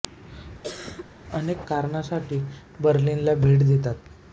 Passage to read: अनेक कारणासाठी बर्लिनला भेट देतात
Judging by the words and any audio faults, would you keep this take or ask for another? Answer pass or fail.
fail